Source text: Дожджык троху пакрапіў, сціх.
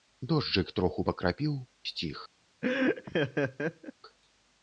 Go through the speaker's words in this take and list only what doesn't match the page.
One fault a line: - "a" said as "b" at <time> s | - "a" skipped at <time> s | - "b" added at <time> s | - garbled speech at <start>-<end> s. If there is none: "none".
none